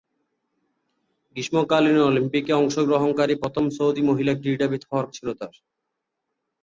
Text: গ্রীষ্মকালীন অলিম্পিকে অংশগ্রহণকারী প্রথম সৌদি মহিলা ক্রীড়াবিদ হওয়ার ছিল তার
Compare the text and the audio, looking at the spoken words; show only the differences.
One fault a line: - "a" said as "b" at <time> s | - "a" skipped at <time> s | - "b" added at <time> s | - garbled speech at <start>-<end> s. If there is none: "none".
none